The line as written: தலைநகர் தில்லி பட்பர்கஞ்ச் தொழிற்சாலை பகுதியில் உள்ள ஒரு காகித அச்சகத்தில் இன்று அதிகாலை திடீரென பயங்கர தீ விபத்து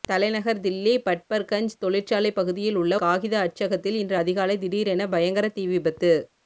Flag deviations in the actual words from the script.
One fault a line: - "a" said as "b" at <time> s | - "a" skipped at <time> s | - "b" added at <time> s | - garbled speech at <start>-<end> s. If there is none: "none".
- "ஒரு" skipped at 3.0 s